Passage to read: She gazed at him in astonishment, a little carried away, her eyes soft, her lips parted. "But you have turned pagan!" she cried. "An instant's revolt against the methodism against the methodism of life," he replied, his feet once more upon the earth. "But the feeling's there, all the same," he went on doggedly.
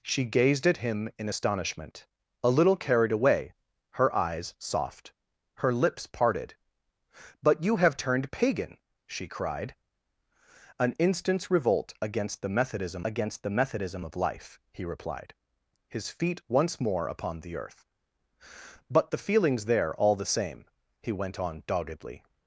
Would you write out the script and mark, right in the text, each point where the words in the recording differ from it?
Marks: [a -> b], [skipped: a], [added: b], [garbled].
She gazed at him in astonishment, a little carried away, her eyes soft, her lips parted. "But you have turned pagan!" she cried. "An instant's revolt against the methodism against the methodism of life," he replied, his feet once more upon the earth. "But the feeling's there, all the same," he went on doggedly.